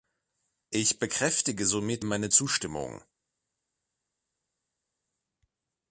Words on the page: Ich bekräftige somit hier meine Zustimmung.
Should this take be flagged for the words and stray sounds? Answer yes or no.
yes